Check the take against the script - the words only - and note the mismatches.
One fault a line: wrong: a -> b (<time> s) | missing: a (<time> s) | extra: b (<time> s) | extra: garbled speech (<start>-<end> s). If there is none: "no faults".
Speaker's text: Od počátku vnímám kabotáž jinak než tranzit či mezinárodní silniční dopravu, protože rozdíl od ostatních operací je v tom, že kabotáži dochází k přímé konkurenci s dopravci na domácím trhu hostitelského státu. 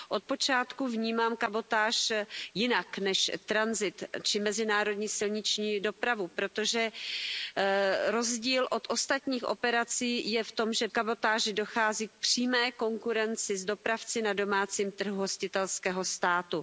no faults